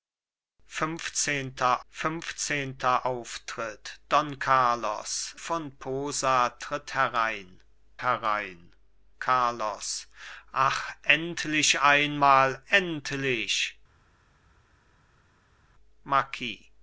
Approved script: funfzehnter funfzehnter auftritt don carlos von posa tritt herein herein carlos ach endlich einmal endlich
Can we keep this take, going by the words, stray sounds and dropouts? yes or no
yes